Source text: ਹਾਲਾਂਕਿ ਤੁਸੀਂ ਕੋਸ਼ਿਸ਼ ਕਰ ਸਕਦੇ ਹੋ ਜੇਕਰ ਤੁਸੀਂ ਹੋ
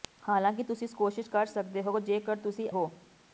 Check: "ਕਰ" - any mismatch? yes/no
no